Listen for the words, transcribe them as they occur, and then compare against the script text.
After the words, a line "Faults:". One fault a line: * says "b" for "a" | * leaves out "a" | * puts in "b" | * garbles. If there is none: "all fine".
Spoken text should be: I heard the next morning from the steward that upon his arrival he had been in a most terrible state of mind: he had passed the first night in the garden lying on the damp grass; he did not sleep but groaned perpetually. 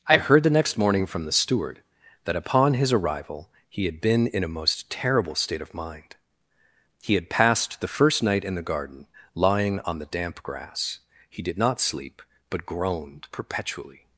I heard the next morning from the steward that upon his arrival he had been in a most terrible state of mind: he had passed the first night in the garden lying on the damp grass; he did not sleep but groaned perpetually.
Faults:
all fine